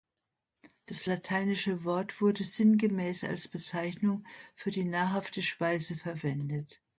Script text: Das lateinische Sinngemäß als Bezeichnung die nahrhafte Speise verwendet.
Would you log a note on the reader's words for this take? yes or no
yes